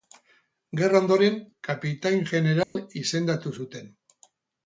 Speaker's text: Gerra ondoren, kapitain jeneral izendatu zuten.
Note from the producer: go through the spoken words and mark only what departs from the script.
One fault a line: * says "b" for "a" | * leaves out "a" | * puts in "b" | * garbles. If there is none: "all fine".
all fine